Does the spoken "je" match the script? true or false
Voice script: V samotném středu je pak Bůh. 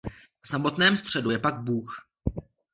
true